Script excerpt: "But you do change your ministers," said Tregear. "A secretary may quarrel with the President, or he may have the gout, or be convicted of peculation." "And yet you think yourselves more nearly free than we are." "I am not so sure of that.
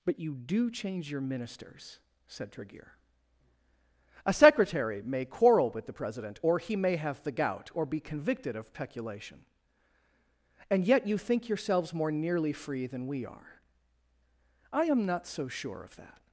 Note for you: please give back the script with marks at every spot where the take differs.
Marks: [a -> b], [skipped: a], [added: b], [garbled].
"But you do change your ministers," said Tregear. "A secretary may quarrel with the President, or he may have the gout, or be convicted of peculation." "And yet you think yourselves more nearly free than we are." "I am not so sure of that.